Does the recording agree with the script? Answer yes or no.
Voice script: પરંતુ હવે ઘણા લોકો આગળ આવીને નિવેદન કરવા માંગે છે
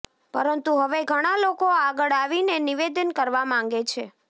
yes